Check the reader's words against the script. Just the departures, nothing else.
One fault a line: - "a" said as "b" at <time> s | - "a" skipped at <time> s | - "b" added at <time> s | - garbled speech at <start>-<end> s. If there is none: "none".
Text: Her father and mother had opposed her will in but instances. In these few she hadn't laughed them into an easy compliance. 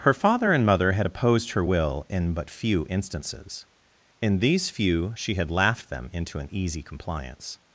- "few" added at 2.5 s
- "hadn't" said as "had" at 5.4 s